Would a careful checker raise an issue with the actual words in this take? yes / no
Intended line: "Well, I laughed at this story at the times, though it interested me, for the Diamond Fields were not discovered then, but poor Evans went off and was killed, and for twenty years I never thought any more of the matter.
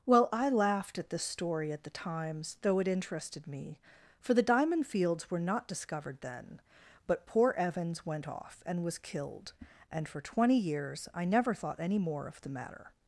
no